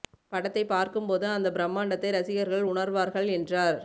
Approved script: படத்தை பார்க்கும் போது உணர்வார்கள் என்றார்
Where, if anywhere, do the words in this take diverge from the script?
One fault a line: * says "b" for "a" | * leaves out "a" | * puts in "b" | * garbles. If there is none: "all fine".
* puts in "அந்த பிரம்மாண்டத்தை ரசிகர்கள்"